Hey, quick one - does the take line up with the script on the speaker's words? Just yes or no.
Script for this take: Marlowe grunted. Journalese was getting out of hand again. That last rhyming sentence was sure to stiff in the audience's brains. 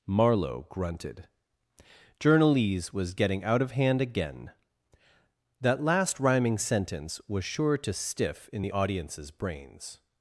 yes